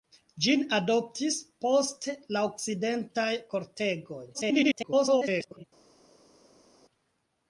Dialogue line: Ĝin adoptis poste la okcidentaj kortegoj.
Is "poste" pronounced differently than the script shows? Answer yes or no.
no